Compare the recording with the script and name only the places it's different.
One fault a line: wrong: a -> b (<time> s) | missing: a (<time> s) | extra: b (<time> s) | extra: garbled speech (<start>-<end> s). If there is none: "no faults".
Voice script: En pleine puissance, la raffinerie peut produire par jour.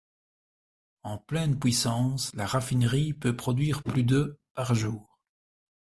extra: plus de (3.8 s)